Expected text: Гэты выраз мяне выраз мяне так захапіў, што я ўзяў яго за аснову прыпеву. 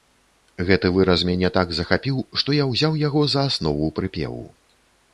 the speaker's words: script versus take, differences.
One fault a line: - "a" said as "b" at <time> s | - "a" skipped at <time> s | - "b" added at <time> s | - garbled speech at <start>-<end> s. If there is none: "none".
- "выраз мяне" skipped at 1.5 s